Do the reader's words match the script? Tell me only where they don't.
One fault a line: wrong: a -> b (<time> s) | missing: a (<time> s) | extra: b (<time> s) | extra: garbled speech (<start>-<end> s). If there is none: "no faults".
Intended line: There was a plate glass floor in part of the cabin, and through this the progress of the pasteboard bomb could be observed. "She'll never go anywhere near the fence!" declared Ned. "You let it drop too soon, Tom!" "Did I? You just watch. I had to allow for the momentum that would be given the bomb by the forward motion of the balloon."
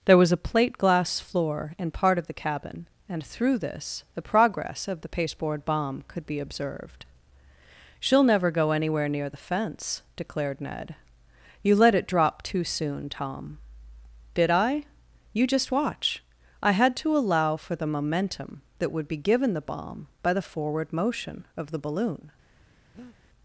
no faults